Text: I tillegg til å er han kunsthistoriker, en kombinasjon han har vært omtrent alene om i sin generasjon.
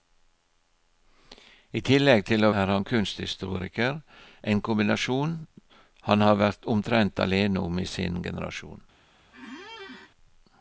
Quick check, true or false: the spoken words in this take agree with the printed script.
true